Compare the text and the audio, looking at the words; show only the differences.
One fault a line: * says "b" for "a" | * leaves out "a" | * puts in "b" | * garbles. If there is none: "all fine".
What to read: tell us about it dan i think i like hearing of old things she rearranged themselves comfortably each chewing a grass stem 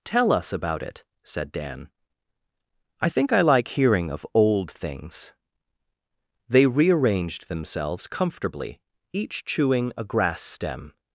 * puts in "said"
* says "they" for "she"